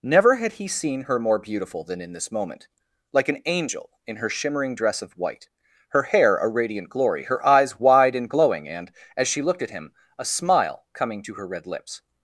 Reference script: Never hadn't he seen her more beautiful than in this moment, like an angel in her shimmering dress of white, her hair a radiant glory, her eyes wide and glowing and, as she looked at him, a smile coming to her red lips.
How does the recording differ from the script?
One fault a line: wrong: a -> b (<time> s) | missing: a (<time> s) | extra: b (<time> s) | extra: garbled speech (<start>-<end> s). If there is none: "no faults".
wrong: hadn't -> had (0.3 s)